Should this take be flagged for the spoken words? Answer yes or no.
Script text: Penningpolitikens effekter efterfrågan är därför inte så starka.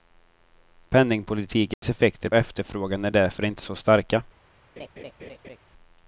no